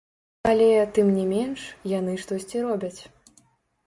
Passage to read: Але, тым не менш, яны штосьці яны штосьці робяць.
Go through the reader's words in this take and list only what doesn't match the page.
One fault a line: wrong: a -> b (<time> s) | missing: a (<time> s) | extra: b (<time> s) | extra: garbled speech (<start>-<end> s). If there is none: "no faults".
missing: яны штосьці (2.6 s)